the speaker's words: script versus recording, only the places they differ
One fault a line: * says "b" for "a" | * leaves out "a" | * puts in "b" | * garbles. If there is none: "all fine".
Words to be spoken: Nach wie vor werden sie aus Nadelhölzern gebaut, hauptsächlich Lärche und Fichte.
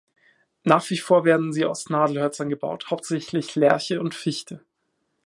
all fine